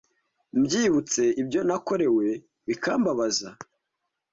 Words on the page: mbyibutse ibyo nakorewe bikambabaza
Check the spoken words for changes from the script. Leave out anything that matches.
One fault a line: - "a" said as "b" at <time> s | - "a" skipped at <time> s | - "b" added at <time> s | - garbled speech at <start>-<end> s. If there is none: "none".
none